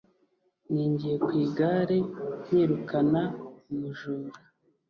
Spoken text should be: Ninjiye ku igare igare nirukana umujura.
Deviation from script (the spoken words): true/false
true